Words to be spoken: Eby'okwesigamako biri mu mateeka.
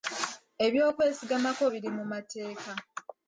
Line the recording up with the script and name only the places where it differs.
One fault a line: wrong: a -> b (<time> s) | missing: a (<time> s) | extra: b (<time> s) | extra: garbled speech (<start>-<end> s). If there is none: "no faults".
no faults